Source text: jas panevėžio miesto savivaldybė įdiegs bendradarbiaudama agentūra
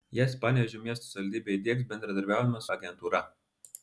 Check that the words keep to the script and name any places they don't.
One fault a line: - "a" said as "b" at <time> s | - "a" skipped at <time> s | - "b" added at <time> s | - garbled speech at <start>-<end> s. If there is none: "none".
none